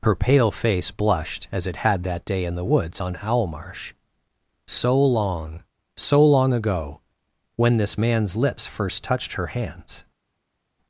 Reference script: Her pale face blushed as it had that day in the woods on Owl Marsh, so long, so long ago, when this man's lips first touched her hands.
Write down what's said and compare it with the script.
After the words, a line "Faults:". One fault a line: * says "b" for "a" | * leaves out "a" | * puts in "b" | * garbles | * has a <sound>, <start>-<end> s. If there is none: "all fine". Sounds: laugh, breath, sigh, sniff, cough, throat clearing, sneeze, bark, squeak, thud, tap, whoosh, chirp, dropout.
Her pale face blushed as it had that day in the woods on Owl Marsh, so long, so long ago, when this man's lips first touched her hands.
Faults:
all fine